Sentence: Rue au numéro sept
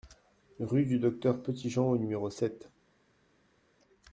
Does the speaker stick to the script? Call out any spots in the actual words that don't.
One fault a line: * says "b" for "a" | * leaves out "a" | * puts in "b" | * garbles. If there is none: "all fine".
* puts in "du Docteur Petitjean"